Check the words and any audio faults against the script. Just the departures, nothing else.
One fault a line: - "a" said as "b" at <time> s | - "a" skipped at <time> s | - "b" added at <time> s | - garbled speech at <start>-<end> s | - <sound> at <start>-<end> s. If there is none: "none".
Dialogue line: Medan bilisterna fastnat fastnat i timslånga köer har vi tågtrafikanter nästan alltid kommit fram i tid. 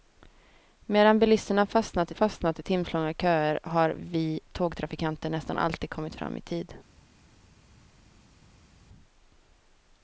none